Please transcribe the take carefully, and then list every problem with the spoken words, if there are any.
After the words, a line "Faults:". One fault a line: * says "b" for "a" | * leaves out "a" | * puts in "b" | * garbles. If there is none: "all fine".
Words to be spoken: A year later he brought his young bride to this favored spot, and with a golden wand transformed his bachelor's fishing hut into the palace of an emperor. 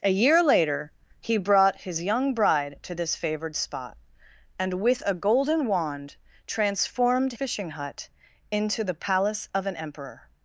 A year later he brought his young bride to this favored spot, and with a golden wand transformed fishing hut into the palace of an emperor.
Faults:
* leaves out "his bachelor's"